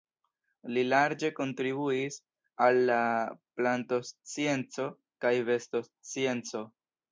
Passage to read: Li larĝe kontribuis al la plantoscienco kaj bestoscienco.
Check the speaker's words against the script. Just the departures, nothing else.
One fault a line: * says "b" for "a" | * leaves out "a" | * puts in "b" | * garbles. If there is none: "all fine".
all fine